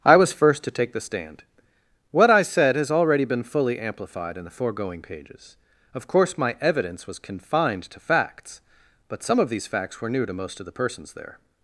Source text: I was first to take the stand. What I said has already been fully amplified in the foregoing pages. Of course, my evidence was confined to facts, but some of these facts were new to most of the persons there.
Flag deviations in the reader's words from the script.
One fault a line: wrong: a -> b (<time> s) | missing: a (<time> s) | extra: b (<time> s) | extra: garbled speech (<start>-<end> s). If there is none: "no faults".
no faults